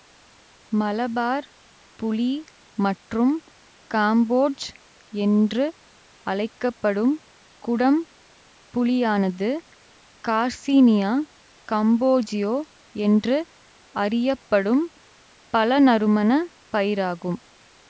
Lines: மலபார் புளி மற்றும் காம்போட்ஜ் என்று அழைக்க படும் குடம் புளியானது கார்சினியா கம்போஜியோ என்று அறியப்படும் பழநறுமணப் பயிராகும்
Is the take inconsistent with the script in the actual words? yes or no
no